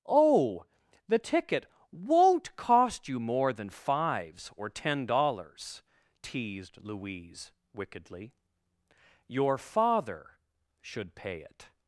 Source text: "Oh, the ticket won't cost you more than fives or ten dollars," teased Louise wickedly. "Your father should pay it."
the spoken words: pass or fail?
pass